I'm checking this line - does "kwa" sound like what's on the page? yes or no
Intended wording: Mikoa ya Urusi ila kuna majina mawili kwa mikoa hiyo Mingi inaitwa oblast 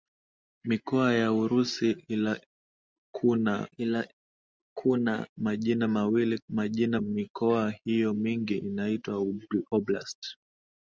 no